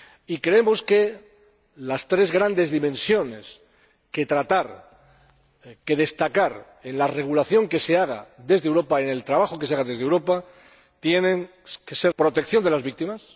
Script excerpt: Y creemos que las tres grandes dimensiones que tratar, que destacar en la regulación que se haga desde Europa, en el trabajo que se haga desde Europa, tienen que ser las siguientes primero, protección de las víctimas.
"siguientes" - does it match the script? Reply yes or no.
no